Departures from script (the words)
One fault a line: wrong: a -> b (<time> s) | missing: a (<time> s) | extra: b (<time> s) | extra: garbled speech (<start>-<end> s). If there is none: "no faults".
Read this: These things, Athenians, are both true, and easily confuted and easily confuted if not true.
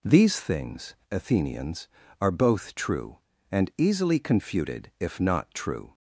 missing: and easily confuted (4.9 s)